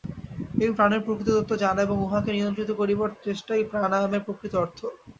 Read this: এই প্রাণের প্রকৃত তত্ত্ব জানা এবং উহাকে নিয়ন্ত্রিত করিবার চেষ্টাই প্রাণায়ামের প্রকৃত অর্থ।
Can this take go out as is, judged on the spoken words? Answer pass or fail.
pass